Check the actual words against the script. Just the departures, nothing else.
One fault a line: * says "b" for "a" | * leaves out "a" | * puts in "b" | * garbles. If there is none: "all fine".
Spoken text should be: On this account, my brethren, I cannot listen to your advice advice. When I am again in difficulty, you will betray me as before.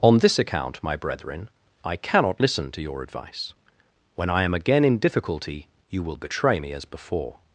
* leaves out "advice"